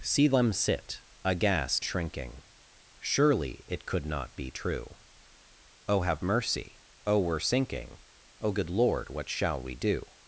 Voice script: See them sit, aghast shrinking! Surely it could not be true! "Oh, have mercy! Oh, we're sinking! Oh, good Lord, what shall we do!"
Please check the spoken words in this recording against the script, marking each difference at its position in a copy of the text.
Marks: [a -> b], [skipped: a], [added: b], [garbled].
See them sit, aghast shrinking! Surely it could not be true! "Oh, have mercy! Oh, we're sinking! Oh, good Lord, what shall we do!"